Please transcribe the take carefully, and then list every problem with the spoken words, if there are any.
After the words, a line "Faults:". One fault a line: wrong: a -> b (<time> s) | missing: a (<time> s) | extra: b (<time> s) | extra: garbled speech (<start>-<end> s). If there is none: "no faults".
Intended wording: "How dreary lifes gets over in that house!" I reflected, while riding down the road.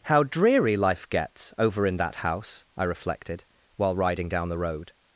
"How dreary life gets over in that house!" I reflected, while riding down the road.
Faults:
wrong: lifes -> life (0.8 s)